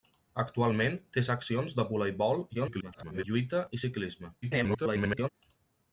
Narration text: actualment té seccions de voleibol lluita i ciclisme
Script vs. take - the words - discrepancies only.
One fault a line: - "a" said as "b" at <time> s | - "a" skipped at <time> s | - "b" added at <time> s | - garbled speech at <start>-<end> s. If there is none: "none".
- garbled speech at 2.5-3.2 s
- garbled speech at 4.4-5.3 s